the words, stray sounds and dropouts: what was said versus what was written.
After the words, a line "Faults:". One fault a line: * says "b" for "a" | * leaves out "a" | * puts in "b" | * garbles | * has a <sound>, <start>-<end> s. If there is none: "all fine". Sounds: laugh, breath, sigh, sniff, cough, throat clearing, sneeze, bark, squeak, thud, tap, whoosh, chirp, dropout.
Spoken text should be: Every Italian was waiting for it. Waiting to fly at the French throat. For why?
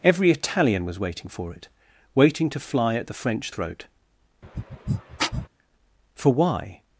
Every Italian was waiting for it. Waiting to fly at the French throat. For why?
Faults:
* has a sniff, 4.4-5.5 s